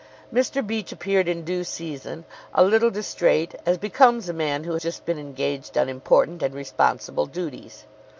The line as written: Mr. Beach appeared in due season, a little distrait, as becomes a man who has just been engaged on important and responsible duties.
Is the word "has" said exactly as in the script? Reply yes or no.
no